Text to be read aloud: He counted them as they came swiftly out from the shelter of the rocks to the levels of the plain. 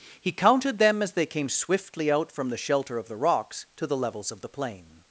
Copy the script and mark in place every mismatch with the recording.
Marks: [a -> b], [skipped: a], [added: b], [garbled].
He counted them as they came swiftly out from the shelter of the rocks to the levels of the plain.